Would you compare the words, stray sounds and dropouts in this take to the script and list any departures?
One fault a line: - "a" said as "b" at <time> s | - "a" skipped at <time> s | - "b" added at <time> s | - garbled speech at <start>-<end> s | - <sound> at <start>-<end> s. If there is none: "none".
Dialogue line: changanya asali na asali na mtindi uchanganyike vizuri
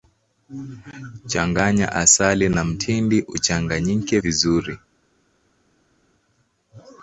- "asali na" skipped at 2.6 s